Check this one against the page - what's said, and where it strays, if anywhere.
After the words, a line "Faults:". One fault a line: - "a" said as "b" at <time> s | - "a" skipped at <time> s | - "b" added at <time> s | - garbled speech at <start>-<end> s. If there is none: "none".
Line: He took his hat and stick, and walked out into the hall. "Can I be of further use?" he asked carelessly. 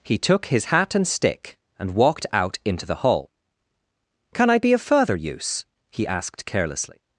He took his hat and stick, and walked out into the hall. "Can I be of further use?" he asked carelessly.
Faults:
none